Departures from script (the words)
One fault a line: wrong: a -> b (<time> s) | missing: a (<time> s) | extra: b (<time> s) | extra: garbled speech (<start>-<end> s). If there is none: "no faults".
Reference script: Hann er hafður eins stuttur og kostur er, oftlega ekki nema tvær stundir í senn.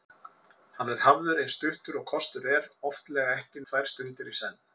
missing: nema (3.6 s)